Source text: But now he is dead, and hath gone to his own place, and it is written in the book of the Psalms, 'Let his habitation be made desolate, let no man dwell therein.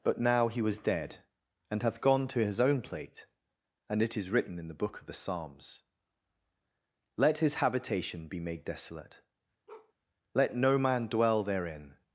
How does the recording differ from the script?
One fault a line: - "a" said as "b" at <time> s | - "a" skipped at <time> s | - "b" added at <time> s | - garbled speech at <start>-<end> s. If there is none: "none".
- "is" said as "was" at 0.6 s
- "place" said as "plate" at 2.8 s